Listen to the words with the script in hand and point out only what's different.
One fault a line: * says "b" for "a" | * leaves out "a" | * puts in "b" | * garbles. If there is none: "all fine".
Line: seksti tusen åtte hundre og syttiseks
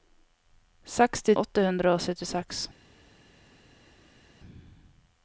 * leaves out "tusen"